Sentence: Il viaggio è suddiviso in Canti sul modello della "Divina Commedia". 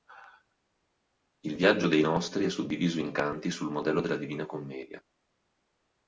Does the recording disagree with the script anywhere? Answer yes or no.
yes